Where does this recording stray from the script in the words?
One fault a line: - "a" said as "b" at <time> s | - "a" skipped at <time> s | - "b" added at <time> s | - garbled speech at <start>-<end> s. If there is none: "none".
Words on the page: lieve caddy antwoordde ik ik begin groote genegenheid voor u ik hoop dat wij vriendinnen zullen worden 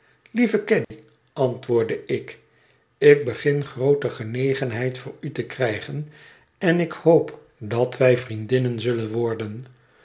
- "te krijgen en" added at 5.3 s